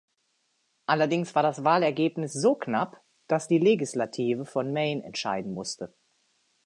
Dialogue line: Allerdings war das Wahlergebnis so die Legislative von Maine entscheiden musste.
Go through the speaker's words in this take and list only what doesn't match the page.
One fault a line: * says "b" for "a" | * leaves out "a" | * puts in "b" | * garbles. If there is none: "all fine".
* puts in "knapp dass"